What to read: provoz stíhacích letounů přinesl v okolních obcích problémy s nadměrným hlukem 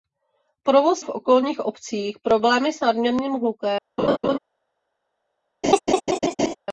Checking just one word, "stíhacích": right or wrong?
wrong